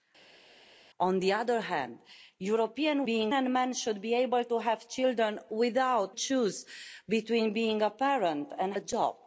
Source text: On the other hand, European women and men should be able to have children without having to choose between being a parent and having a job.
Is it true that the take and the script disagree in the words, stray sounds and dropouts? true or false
true